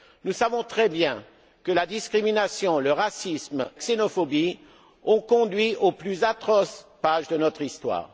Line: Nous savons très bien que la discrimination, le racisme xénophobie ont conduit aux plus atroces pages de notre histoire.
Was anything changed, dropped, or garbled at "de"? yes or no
no